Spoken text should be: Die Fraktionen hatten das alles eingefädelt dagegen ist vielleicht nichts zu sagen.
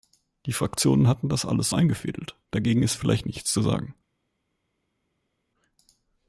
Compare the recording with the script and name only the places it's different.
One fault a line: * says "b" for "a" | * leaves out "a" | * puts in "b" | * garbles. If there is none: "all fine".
all fine